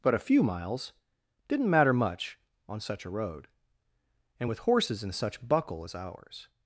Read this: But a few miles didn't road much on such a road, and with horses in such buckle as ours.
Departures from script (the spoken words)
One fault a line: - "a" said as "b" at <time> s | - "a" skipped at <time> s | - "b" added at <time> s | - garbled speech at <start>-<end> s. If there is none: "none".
- "road" said as "matter" at 1.7 s